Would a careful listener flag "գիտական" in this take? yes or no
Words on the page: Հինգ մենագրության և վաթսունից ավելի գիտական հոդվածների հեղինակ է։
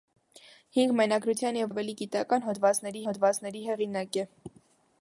no